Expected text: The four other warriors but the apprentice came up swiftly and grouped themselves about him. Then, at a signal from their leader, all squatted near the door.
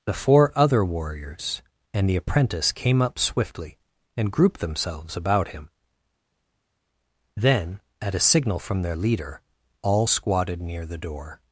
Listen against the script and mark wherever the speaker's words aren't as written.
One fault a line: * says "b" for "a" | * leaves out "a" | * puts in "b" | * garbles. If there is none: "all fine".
* says "and" for "but"